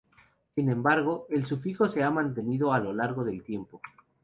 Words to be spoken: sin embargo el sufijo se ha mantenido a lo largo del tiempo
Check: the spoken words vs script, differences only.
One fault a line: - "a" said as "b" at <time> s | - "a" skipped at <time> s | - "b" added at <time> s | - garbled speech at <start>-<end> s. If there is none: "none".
none